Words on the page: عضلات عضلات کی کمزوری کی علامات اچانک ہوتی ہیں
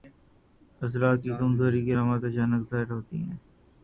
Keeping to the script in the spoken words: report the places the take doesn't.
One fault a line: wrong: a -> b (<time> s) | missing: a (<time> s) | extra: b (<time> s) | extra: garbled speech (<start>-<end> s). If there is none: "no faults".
missing: عضلات (1.2 s)
extra: ظاہر (2.7 s)